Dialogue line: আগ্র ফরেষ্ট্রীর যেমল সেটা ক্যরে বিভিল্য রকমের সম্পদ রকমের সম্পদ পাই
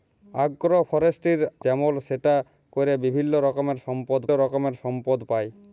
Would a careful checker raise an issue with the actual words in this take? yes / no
no